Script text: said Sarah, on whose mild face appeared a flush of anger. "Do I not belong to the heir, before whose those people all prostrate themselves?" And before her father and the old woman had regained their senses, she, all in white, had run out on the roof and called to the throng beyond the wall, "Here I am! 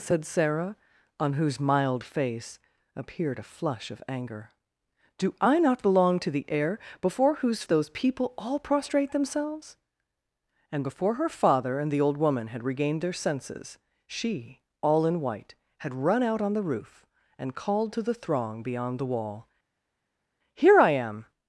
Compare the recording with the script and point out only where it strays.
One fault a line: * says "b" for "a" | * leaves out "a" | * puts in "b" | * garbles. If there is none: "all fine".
all fine